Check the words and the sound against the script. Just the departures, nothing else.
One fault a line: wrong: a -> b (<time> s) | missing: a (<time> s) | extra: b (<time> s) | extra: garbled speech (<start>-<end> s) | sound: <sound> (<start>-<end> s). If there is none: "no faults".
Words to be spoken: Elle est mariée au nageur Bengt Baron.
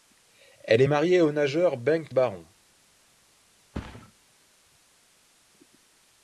sound: thud (3.7-4.1 s)